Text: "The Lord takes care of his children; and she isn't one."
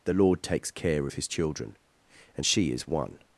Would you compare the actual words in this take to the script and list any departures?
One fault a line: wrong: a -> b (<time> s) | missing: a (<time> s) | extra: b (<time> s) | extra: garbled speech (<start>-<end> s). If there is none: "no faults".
wrong: isn't -> is (2.7 s)